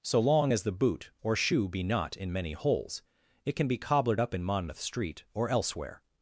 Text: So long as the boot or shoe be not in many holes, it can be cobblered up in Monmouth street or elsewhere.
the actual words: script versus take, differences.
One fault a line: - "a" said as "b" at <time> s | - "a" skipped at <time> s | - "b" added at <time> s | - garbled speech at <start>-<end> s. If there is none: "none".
none